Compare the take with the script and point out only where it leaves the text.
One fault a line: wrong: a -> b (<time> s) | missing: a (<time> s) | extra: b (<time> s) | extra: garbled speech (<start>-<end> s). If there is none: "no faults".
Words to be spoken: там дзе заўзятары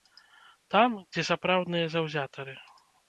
extra: сапраўдныя (1.3 s)